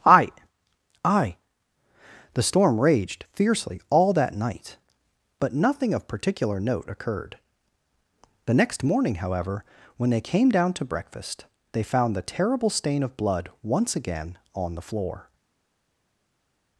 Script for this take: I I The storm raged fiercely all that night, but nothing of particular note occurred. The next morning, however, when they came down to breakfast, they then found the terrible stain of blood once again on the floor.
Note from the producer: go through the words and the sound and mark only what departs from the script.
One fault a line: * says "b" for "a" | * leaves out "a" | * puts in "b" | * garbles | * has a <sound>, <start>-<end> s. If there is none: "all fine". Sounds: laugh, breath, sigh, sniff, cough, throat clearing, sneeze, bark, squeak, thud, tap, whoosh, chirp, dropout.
* leaves out "then"